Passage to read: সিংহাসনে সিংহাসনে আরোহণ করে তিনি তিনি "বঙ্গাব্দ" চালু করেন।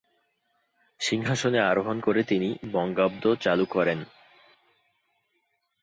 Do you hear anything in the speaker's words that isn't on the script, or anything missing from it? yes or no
yes